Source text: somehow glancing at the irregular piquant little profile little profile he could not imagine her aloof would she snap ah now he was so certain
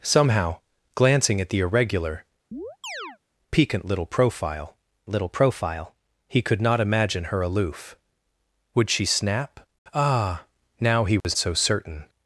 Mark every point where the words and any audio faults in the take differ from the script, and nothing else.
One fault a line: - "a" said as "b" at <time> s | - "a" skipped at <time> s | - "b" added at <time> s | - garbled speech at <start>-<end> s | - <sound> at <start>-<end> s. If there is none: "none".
- chirp at 2.5-3.2 s
- dropout at 11.2-11.2 s